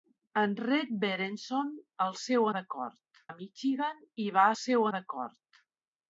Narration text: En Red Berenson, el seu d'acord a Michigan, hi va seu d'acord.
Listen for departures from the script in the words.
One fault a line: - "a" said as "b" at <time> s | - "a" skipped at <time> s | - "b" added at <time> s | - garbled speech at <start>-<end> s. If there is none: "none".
none